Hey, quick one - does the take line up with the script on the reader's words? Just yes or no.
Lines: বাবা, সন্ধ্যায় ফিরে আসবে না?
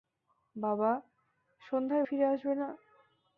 yes